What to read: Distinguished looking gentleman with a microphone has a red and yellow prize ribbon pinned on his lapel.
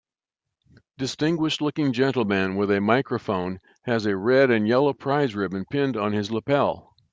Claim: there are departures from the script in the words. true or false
false